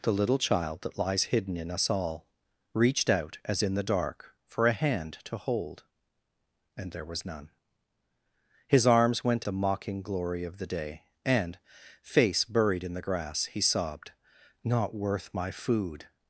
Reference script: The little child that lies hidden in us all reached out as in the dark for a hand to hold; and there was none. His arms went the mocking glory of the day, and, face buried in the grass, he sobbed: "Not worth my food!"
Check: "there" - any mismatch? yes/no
no